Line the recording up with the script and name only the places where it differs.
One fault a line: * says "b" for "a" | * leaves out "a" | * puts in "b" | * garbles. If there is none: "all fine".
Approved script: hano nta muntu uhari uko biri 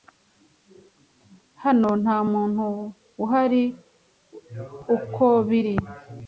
all fine